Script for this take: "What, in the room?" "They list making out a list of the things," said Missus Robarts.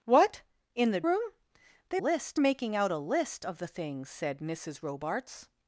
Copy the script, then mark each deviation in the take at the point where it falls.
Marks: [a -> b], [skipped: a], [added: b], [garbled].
"What, in the room?" "They list making out a list of the things," said Missus Robarts.